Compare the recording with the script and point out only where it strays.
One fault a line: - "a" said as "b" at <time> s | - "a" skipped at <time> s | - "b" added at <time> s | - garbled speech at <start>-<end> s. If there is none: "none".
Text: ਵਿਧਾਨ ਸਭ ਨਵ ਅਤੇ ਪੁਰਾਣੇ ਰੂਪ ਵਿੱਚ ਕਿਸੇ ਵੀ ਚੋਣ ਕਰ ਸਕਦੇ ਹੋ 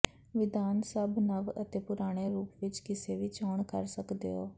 none